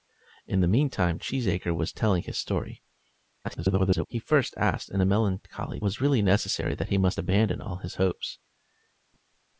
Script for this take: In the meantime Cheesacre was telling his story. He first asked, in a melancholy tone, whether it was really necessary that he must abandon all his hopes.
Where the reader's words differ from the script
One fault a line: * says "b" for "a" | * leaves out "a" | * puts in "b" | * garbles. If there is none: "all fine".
* garbles
* leaves out "tone whether it"